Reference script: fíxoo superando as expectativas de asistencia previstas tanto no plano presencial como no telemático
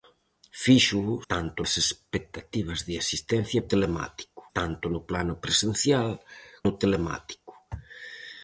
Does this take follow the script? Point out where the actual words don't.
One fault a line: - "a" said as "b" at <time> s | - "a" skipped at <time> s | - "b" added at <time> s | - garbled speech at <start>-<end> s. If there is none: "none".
- "superando" said as "tanto" at 1.3 s
- "previstas" said as "telemático" at 3.7 s
- "como" skipped at 6.1 s